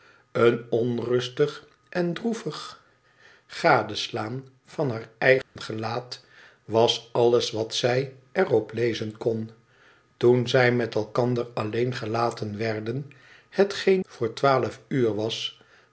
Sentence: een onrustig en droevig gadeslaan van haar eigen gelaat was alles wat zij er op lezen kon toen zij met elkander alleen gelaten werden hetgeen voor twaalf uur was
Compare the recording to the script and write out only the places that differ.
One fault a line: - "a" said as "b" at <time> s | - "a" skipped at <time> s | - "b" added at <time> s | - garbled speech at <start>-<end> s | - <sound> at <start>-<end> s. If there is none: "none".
- dropout at 5.4-5.6 s